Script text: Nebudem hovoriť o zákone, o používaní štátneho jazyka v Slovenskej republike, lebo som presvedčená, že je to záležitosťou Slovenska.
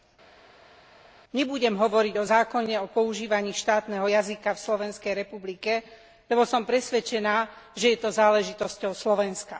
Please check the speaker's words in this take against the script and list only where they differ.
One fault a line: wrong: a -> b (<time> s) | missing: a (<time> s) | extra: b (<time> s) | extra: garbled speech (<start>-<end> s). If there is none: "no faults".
no faults